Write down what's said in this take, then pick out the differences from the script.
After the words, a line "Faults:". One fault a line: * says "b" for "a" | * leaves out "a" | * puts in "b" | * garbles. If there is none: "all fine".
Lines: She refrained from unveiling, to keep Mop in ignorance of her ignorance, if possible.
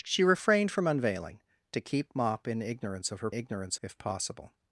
She refrained from unveiling, to keep Mop in ignorance of her ignorance, if possible.
Faults:
all fine